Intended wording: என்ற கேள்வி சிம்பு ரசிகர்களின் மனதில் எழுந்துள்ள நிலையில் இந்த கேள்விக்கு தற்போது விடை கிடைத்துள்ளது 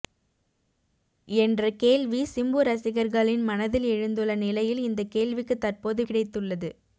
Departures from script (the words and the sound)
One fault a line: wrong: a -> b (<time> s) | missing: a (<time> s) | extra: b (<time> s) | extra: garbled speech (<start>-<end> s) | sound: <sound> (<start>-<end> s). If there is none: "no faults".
missing: விடை (6.0 s)